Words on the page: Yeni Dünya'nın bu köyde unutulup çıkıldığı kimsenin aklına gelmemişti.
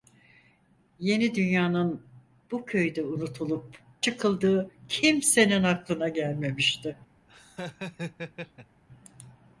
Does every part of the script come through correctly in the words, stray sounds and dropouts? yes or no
no